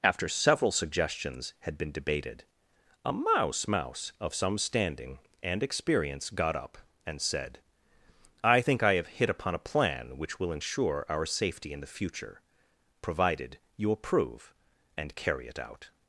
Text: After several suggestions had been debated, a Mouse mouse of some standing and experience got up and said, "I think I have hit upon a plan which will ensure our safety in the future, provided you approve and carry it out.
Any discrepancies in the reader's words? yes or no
no